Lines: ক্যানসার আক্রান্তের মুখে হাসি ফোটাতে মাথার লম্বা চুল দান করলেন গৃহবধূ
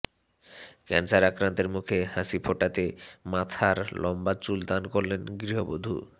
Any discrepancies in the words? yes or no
no